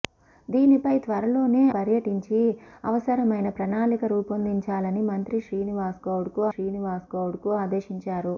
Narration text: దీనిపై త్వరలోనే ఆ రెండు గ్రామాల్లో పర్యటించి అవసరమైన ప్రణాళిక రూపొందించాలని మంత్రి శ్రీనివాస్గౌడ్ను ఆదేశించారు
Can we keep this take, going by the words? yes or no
no